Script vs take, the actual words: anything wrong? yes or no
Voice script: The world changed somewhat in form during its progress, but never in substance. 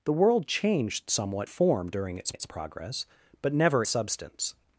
yes